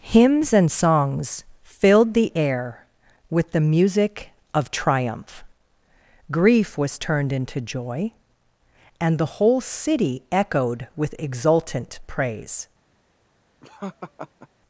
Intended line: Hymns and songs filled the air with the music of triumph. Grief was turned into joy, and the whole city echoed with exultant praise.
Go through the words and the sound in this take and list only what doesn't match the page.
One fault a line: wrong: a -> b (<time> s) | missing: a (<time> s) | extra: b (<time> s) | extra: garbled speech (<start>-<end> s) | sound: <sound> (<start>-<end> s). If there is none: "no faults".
sound: laugh (13.6-14.5 s)